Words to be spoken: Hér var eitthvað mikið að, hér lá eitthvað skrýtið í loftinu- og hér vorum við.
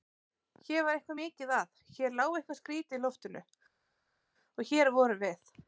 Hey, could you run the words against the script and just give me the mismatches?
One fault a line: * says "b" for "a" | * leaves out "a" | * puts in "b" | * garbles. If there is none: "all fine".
all fine